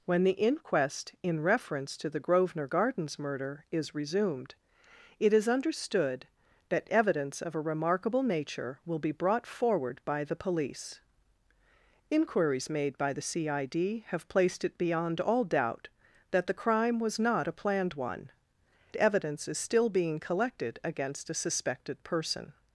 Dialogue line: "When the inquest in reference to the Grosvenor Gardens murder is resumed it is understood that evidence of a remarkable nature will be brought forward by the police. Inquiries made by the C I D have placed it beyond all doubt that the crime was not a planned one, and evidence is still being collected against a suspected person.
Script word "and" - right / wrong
wrong